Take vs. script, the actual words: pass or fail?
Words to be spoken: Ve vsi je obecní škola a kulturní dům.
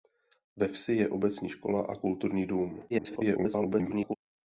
fail